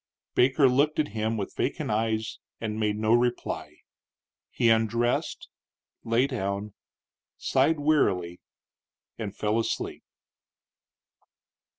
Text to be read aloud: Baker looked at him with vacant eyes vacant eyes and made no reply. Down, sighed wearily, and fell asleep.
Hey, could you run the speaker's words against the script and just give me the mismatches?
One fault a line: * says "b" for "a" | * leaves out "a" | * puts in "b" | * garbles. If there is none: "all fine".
* leaves out "vacant eyes"
* puts in "He undressed lay"